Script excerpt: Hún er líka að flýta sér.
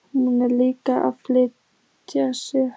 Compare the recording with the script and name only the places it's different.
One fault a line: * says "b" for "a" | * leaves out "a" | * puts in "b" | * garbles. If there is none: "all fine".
all fine